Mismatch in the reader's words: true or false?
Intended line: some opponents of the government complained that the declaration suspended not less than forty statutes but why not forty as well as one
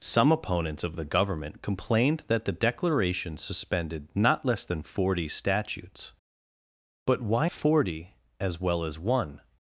true